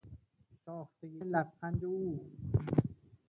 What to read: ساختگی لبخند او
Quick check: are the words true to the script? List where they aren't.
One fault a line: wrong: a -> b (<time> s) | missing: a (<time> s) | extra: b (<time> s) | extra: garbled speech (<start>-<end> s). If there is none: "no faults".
no faults